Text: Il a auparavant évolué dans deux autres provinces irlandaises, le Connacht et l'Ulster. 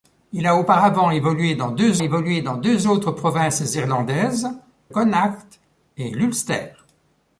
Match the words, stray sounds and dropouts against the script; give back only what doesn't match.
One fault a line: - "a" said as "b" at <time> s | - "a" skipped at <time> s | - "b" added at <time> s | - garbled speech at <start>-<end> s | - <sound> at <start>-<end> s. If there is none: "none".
- "évolué dans deux" added at 2.0 s
- "le" skipped at 4.5 s